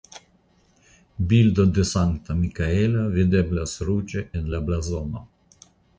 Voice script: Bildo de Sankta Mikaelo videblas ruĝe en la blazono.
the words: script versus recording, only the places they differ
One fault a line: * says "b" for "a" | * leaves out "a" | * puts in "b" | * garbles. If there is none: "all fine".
all fine